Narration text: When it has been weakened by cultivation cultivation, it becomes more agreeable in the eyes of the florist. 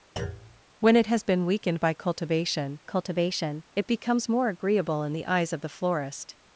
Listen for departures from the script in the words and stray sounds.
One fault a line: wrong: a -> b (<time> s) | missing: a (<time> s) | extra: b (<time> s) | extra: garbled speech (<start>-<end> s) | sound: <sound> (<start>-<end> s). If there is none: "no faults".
sound: thud (0.2-0.6 s)